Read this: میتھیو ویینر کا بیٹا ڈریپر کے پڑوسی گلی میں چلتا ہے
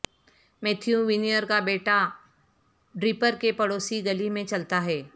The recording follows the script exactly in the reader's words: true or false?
true